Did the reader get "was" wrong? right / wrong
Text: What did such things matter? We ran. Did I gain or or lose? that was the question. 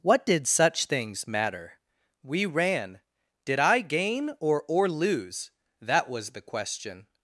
right